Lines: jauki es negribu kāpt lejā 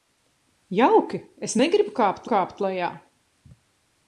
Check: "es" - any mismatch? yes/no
no